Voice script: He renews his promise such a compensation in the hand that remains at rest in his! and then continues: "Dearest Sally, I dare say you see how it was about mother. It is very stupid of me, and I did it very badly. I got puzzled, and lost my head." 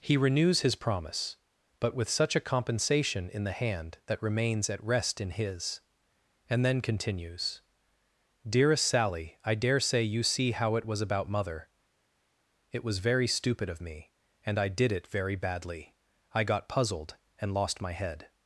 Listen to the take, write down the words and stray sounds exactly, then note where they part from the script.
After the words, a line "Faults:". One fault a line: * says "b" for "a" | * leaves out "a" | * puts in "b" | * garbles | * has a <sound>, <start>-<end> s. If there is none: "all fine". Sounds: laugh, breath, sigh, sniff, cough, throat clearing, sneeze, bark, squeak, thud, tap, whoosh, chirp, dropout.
He renews his promise but with such a compensation in the hand that remains at rest in his! and then continues: "Dearest Sally, I dare say you see how it was about mother. It was very stupid of me, and I did it very badly. I got puzzled, and lost my head."
Faults:
* puts in "but with"
* says "was" for "is"